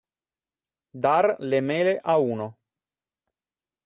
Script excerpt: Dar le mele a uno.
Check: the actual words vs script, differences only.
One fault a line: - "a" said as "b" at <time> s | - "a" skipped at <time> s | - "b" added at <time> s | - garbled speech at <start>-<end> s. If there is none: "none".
none